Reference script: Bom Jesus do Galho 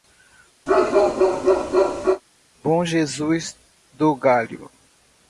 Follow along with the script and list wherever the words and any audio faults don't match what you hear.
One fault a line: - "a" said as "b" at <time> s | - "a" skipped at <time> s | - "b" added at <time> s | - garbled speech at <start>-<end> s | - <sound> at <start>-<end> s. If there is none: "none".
- bark at 0.7-2.2 s